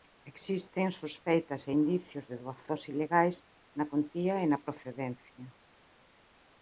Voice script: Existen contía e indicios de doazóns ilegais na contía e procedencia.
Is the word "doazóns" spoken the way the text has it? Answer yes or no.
yes